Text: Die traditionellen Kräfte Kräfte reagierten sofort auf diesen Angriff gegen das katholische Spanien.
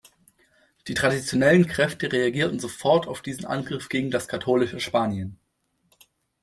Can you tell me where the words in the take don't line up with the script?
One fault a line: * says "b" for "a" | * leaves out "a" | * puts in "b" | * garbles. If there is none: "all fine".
* leaves out "Kräfte"